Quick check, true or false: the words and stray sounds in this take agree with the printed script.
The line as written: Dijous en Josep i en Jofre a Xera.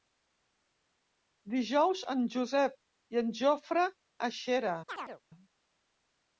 false